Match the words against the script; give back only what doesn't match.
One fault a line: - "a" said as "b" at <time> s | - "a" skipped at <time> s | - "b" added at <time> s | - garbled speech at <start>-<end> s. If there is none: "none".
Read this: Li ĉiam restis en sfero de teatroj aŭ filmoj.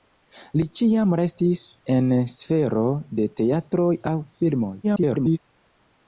- garbled speech at 4.8-5.4 s